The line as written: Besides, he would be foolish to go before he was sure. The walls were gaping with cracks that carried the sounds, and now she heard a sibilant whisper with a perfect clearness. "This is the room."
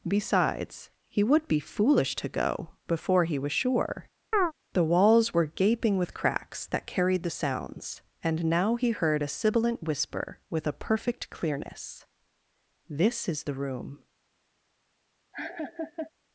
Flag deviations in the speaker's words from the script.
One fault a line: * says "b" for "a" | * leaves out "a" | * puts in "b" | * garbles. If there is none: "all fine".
* says "he" for "she"